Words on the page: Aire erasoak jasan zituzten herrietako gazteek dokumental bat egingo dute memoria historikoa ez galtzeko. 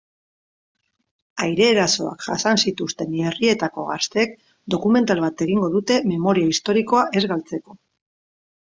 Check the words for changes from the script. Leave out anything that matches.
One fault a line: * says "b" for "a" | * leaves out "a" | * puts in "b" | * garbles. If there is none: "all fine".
all fine